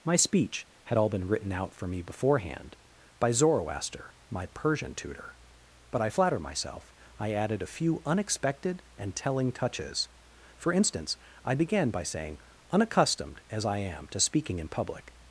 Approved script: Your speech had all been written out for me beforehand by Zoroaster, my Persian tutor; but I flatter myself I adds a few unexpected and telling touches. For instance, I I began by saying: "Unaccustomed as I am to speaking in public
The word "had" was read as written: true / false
true